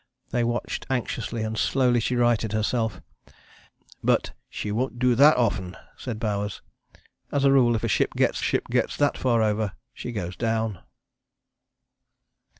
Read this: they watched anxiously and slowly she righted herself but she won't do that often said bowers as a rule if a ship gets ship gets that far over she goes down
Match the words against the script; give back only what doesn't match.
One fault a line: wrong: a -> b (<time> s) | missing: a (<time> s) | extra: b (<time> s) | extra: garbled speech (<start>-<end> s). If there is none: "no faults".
no faults